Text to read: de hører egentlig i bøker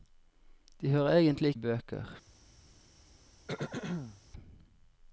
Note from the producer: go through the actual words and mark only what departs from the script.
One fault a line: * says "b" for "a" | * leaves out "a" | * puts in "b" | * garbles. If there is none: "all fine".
all fine